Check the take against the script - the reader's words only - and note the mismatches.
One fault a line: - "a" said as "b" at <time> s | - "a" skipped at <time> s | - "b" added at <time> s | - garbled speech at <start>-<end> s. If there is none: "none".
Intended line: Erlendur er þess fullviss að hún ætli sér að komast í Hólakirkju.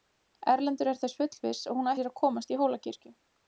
- "ætli" skipped at 1.9 s